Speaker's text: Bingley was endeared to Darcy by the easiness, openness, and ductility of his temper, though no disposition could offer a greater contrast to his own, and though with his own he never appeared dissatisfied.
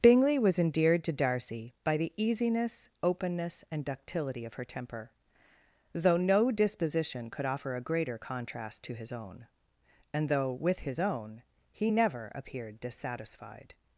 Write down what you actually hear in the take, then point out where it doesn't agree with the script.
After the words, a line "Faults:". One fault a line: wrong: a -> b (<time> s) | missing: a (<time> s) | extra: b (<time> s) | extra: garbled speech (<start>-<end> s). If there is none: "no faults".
Bingley was endeared to Darcy by the easiness, openness, and ductility of her temper, though no disposition could offer a greater contrast to his own, and though with his own he never appeared dissatisfied.
Faults:
wrong: his -> her (4.5 s)